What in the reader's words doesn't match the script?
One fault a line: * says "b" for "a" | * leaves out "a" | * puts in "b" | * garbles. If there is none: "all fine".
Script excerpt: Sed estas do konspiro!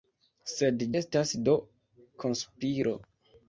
all fine